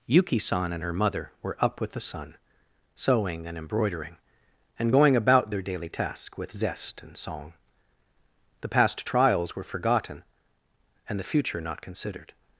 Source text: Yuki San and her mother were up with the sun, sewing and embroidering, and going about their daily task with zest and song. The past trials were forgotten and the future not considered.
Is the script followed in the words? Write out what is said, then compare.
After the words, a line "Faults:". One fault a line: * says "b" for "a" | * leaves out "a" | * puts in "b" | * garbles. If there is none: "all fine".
Yuki San and her mother were up with the sun, sewing and embroidering, and going about their daily task with zest and song. The past trials were forgotten and the future not considered.
Faults:
all fine